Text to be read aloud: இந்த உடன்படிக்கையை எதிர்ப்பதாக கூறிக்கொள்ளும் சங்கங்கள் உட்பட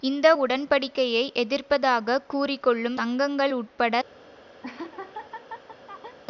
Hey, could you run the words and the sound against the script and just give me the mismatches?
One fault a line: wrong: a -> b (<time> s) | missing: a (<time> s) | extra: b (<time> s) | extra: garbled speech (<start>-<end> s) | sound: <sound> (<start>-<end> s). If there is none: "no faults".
sound: laugh (4.6-6.2 s)